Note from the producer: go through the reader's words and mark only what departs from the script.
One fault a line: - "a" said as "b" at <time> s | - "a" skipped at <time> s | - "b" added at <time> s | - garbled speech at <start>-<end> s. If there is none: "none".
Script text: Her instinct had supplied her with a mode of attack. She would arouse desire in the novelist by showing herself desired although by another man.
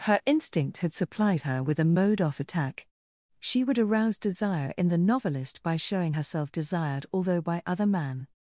- "of" said as "off" at 2.2 s
- "another" said as "other" at 7.7 s